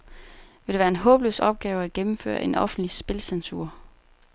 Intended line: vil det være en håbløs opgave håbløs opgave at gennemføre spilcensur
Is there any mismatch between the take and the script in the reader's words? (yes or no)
yes